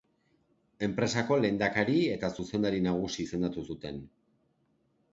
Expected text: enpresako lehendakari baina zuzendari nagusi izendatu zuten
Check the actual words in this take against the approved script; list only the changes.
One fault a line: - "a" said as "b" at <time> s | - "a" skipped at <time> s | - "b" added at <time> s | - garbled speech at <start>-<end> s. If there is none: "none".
- "baina" said as "eta" at 2.1 s